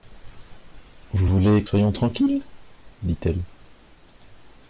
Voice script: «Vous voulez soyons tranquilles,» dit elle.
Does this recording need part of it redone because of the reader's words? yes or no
no